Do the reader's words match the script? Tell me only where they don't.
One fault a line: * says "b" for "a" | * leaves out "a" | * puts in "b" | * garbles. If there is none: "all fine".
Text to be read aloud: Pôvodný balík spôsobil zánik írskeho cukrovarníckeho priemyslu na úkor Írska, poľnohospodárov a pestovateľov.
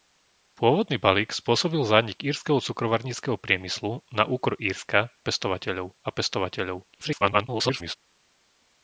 * says "pestovateľov" for "poľnohospodárov"
* garbles